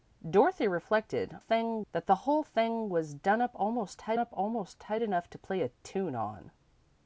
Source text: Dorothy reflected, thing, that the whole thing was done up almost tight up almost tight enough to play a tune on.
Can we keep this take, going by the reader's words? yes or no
yes